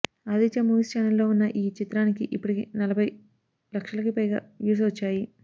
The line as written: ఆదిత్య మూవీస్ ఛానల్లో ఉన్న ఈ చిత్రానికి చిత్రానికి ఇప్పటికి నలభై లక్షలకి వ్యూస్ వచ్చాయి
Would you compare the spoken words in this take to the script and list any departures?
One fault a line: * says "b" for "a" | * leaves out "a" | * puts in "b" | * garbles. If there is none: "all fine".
* leaves out "చిత్రానికి"
* puts in "పైగా"